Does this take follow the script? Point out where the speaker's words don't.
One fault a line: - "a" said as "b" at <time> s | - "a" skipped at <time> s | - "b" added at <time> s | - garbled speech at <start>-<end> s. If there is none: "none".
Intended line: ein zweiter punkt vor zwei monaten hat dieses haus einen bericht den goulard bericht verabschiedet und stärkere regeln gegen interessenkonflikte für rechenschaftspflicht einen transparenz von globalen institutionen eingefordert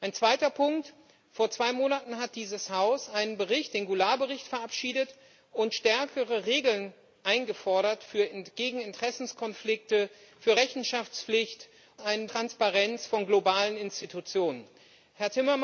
none